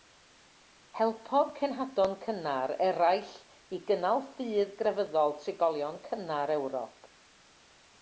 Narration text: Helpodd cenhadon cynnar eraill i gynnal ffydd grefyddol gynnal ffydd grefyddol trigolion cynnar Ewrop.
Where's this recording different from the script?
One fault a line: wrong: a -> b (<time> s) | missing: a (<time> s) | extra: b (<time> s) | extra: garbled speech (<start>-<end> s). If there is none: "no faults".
missing: gynnal ffydd grefyddol (5.4 s)